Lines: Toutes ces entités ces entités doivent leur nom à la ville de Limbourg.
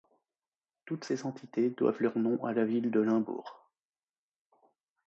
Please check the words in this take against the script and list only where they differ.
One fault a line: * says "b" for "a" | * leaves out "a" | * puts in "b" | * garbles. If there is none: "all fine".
* leaves out "ces entités"